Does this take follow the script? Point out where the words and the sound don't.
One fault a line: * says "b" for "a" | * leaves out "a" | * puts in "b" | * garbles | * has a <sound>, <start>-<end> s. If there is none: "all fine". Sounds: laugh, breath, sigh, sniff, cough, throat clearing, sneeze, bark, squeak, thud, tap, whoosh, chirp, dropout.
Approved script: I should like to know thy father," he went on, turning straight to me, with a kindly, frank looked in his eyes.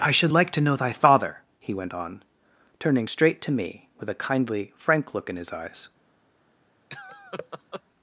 * says "look" for "looked"
* has a laugh, 6.9-7.8 s